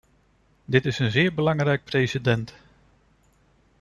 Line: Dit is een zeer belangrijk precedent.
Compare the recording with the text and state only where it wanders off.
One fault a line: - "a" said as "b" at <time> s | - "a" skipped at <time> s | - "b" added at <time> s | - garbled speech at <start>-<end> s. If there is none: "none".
none